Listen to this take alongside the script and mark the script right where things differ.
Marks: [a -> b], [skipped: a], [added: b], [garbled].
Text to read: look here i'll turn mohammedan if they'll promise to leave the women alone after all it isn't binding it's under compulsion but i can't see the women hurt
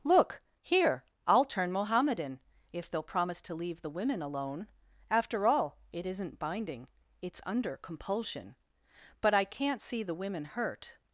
look here i'll turn mohammedan if they'll promise to leave the women alone after all it isn't binding it's under compulsion but i can't see the women hurt